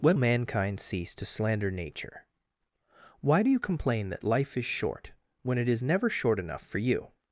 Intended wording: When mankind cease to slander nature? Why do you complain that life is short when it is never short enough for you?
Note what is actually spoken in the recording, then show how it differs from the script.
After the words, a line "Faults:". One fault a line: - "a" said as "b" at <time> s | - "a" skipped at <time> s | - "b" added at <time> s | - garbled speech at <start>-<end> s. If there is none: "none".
When mankind cease to slander nature? Why do you complain that life is short when it is never short enough for you?
Faults:
none